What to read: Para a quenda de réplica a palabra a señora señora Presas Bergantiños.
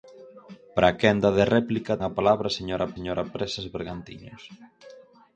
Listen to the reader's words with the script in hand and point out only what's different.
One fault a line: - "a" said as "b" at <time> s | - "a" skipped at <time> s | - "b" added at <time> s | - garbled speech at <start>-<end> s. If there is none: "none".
none